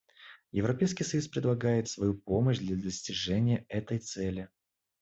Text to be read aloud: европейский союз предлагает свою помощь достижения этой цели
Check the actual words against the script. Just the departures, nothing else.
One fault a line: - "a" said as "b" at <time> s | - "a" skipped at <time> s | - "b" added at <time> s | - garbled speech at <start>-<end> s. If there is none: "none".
- "для" added at 2.6 s